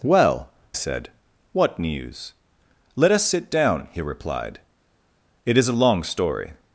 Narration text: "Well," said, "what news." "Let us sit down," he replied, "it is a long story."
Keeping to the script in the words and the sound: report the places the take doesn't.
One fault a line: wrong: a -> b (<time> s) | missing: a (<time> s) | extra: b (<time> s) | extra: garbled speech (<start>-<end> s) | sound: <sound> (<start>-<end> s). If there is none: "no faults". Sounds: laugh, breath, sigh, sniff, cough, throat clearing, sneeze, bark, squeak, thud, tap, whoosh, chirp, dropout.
no faults